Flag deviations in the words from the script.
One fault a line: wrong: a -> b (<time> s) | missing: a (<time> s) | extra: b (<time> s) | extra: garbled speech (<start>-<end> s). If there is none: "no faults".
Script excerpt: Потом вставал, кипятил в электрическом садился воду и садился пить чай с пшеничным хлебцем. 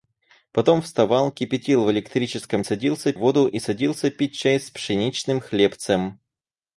no faults